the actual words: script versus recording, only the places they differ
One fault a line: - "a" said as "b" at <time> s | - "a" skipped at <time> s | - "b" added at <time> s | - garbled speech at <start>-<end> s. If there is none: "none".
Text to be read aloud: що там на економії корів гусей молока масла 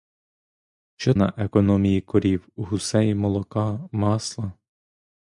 - "там" skipped at 1.1 s